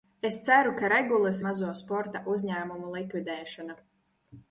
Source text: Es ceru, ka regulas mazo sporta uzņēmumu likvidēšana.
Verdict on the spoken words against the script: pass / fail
pass